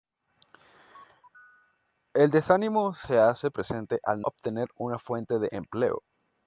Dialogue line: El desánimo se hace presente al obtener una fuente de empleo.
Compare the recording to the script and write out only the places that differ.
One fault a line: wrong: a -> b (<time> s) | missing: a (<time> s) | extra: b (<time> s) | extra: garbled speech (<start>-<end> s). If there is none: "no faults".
no faults